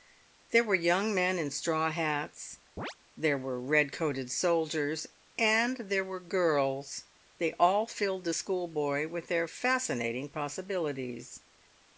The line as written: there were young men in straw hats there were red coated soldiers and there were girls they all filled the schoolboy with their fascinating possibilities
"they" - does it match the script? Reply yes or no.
yes